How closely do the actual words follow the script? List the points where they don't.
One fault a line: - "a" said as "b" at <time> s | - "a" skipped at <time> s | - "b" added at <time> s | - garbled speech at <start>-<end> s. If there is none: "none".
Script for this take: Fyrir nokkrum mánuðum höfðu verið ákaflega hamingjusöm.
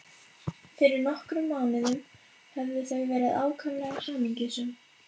- "þau" added at 2.9 s